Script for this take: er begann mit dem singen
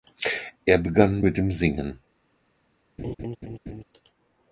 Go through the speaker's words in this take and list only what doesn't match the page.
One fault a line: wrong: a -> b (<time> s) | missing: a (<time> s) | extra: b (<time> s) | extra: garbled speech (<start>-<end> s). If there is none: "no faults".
no faults